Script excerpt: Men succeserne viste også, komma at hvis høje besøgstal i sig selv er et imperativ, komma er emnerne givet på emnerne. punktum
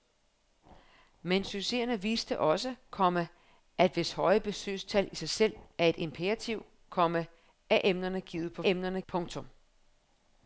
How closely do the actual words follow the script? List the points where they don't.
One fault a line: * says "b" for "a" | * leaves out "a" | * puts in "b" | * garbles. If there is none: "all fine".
all fine